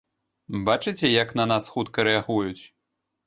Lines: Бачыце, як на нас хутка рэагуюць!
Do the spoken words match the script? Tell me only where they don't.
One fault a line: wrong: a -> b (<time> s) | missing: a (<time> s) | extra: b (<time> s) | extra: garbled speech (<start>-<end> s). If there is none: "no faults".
no faults